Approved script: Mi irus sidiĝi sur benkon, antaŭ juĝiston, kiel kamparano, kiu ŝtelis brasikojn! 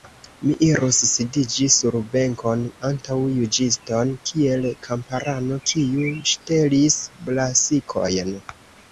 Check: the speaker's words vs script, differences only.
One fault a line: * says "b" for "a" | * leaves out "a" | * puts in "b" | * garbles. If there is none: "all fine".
all fine